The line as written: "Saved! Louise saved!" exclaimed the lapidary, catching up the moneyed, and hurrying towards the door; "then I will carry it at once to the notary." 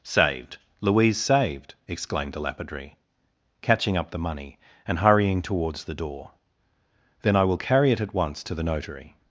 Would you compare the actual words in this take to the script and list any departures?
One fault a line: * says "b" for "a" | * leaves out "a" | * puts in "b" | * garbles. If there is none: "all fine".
* says "money" for "moneyed"